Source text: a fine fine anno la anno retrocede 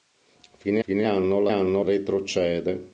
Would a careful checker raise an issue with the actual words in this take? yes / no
no